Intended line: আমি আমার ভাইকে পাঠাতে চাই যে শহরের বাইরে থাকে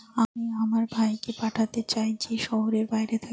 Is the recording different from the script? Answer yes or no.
no